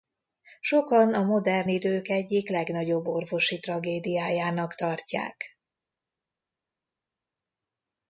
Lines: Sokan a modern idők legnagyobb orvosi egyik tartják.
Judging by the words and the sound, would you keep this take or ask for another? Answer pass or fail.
fail